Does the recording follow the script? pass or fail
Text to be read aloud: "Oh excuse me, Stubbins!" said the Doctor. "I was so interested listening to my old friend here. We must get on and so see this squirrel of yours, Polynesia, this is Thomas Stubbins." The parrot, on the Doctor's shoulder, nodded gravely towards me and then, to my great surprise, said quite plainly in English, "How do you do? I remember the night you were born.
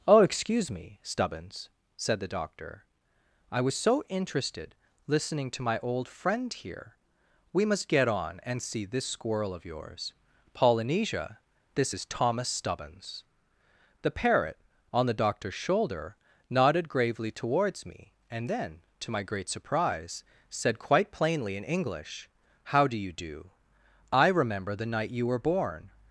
fail